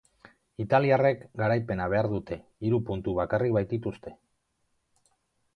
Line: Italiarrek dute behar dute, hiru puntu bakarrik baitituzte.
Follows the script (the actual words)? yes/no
no